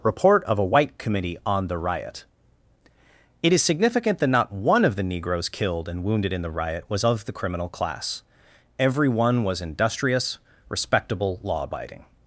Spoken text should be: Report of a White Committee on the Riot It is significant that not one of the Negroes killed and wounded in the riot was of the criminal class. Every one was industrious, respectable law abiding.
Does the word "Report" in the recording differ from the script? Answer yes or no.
no